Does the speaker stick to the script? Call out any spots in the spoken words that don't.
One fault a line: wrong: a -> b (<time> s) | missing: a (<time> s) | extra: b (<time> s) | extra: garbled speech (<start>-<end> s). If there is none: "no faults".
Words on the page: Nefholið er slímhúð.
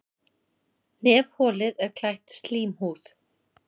extra: klætt (2.0 s)